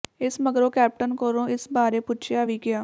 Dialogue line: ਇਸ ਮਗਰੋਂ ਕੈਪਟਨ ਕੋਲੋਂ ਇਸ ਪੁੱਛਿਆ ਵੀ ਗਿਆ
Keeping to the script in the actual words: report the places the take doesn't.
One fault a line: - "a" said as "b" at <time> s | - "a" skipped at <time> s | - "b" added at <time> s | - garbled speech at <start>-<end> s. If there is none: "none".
- "ਬਾਰੇ" added at 1.7 s